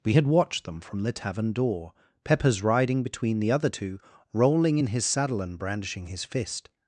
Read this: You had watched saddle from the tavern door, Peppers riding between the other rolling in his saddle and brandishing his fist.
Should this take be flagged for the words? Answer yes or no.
yes